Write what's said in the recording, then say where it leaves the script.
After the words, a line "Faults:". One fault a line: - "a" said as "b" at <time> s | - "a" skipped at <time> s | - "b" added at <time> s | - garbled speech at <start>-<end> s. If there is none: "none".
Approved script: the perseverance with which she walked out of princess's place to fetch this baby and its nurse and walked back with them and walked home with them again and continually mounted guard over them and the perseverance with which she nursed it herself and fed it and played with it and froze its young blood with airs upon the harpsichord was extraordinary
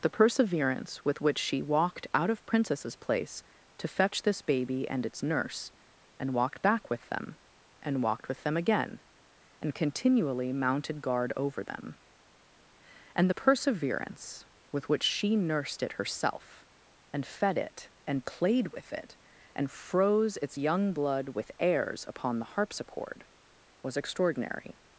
the perseverance with which she walked out of princess's place to fetch this baby and its nurse and walked back with them and walked with them again and continually mounted guard over them and the perseverance with which she nursed it herself and fed it and played with it and froze its young blood with airs upon the harpsichord was extraordinary
Faults:
- "home" skipped at 8.3 s